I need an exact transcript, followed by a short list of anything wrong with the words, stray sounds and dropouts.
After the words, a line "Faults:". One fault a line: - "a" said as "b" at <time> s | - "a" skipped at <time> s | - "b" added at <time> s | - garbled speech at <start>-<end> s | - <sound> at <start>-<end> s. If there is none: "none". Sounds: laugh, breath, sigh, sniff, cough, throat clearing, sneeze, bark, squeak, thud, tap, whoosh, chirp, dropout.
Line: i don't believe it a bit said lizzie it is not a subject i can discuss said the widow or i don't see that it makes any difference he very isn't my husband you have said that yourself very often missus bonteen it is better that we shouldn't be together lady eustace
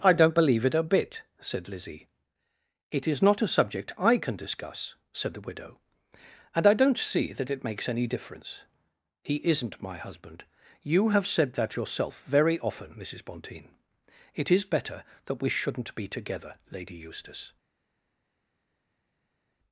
i don't believe it a bit said lizzie it is not a subject i can discuss said the widow and i don't see that it makes any difference he isn't my husband you have said that yourself very often missus bonteen it is better that we shouldn't be together lady eustace
Faults:
- "or" said as "and" at 6.5 s
- "very" skipped at 9.3 s